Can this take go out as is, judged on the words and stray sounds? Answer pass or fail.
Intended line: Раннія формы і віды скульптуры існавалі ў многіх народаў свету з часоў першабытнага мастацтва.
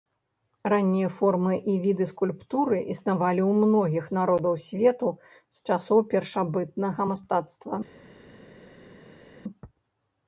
pass